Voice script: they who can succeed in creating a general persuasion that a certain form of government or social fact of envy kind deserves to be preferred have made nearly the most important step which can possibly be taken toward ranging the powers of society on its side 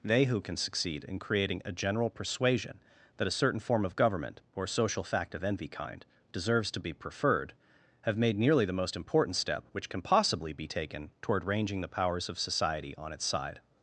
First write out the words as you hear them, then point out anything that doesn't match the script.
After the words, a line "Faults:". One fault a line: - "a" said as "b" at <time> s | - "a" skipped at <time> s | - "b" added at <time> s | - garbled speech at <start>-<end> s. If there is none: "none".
they who can succeed in creating a general persuasion that a certain form of government or social fact of envy kind deserves to be preferred have made nearly the most important step which can possibly be taken toward ranging the powers of society on its side
Faults:
none